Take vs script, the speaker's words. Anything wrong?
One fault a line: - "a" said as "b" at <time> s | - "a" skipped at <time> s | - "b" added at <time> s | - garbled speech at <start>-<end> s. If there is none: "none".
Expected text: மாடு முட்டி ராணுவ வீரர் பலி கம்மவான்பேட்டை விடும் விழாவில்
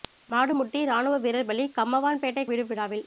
none